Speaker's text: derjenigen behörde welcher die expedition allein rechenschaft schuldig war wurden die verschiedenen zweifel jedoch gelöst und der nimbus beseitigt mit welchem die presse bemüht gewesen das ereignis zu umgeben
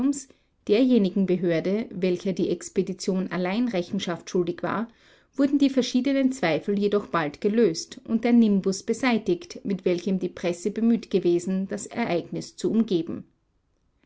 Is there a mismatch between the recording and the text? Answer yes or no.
yes